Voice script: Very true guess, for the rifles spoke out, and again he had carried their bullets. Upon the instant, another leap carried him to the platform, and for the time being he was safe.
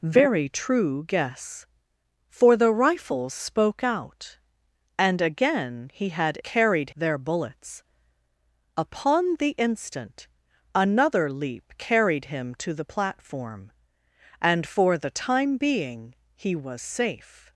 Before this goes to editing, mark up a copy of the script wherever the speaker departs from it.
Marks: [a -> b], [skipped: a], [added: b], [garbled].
Very true guess, for the rifles spoke out, and again he had carried their bullets. Upon the instant, another leap carried him to the platform, and for the time being he was safe.